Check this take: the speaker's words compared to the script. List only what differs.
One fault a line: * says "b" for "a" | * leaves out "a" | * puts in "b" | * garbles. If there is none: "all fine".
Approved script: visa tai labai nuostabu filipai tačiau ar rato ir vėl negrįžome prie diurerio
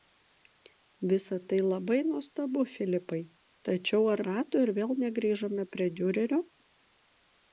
all fine